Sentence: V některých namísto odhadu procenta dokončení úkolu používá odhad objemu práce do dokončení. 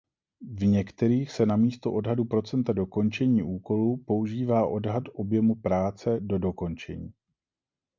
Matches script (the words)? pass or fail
fail